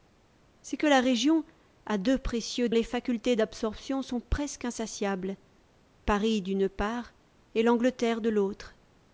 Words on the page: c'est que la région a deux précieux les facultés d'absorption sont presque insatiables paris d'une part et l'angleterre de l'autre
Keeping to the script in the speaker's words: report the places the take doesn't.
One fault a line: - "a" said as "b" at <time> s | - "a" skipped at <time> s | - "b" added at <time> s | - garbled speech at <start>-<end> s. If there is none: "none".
none